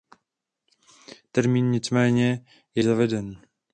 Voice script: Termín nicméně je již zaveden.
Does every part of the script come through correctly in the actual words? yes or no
no